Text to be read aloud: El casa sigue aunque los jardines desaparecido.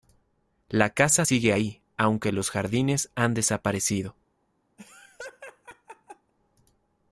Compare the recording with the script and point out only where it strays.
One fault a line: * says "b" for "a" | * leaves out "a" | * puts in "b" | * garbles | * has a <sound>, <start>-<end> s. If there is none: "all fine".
* says "La" for "El"
* puts in "ahí"
* puts in "han"
* has a laugh, 4.8-6.3 s